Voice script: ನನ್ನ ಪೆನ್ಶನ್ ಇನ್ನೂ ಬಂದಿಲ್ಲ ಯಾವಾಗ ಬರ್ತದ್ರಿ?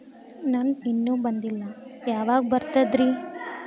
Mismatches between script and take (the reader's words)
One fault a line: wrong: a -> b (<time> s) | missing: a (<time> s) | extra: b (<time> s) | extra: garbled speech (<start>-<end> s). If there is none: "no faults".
missing: ಪೆನ್ಶನ್ (0.7 s)